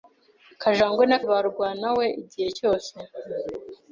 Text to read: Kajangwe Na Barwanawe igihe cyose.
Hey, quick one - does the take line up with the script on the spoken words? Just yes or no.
yes